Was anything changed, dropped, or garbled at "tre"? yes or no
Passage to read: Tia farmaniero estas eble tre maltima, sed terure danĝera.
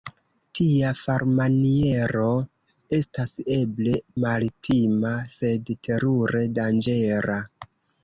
yes